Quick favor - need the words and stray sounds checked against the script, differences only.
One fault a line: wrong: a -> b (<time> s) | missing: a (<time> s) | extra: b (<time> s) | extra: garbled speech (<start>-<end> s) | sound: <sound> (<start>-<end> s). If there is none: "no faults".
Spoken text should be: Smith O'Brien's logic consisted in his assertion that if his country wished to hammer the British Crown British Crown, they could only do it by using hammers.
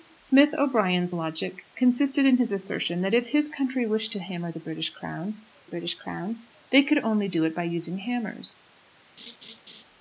sound: laugh (9.2-9.8 s)